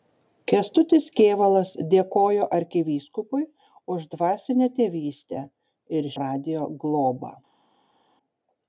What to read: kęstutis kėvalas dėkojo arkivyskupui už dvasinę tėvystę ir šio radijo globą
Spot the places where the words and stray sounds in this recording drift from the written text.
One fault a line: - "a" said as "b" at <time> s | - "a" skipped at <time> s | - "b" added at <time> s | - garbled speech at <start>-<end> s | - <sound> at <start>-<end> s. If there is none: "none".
- "šio" skipped at 6.1 s